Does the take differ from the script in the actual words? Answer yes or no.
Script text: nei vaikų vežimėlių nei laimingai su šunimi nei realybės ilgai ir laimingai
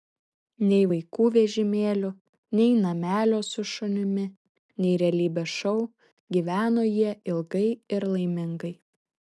yes